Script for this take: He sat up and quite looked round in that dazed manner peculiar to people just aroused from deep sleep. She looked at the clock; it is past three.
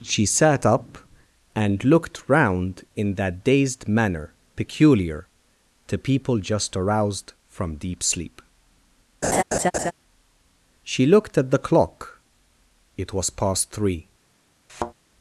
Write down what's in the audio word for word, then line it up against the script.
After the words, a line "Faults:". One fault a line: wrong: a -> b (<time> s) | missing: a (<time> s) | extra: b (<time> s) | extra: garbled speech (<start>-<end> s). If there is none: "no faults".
She sat up and looked round in that dazed manner peculiar to people just aroused from deep sleep. She looked at the clock; it was past three.
Faults:
wrong: He -> She (0.0 s)
missing: quite (1.8 s)
wrong: is -> was (13.1 s)